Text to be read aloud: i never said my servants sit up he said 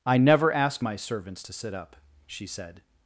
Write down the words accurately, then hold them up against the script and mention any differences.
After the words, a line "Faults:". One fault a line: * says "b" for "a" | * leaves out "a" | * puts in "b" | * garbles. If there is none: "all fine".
i never ask my servants to sit up she said
Faults:
* says "ask" for "said"
* puts in "to"
* says "she" for "he"